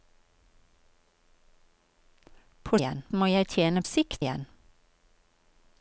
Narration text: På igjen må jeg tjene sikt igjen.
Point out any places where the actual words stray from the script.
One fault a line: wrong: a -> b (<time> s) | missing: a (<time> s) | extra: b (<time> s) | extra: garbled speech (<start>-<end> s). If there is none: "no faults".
no faults